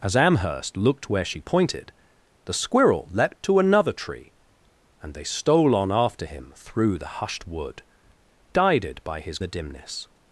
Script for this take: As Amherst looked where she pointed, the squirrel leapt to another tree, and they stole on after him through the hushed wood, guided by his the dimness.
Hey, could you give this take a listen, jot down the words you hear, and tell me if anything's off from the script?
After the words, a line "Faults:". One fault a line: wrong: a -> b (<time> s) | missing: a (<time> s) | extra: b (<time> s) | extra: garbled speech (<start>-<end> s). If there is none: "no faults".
As Amherst looked where she pointed, the squirrel leapt to another tree, and they stole on after him through the hushed wood, guided by his the dimness.
Faults:
no faults